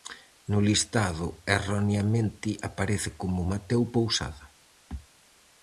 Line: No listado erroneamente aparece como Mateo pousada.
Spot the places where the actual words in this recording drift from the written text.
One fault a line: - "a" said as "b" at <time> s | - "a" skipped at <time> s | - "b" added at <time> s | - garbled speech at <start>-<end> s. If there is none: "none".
none